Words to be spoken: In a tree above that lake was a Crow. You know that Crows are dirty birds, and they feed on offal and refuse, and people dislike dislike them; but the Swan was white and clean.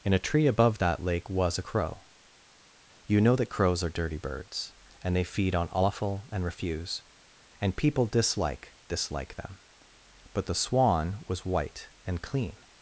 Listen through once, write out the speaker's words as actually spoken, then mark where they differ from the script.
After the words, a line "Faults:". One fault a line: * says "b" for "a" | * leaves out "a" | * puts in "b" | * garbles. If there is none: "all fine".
In a tree above that lake was a Crow. You know that Crows are dirty birds, and they feed on offal and refuse, and people dislike dislike them; but the Swan was white and clean.
Faults:
all fine